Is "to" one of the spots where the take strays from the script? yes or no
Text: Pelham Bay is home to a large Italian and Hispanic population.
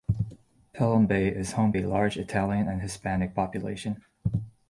yes